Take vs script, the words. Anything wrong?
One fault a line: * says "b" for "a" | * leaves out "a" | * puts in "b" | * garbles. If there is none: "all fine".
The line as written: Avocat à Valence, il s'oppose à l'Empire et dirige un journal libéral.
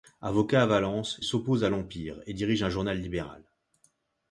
* leaves out "il"